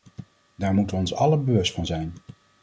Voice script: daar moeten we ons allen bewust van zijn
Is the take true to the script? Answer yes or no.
yes